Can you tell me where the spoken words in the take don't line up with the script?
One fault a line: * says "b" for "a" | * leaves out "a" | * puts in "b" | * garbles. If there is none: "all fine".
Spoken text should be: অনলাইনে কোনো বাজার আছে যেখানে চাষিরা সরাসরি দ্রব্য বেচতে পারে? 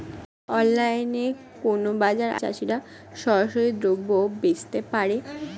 * leaves out "আছে যেখানে"